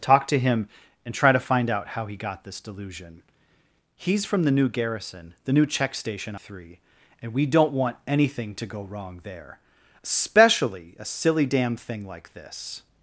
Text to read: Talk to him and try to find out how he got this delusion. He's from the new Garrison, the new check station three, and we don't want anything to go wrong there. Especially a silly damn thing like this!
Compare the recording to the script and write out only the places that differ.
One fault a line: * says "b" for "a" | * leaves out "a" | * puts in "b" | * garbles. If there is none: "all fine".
all fine